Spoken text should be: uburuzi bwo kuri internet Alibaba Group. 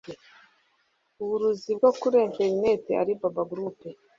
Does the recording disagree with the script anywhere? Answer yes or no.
no